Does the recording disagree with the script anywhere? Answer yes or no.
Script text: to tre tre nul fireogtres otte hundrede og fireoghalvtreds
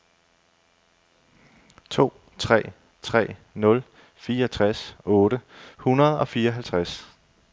no